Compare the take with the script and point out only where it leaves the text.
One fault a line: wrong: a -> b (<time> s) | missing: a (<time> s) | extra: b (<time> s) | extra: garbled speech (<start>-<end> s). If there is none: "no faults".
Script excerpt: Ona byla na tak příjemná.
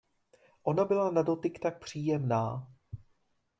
extra: dotyk (1.2 s)